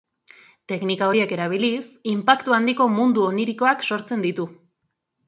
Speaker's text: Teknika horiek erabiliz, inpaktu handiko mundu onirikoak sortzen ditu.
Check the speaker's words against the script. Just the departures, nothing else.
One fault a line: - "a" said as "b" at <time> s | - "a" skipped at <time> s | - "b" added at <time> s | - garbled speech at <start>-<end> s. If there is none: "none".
none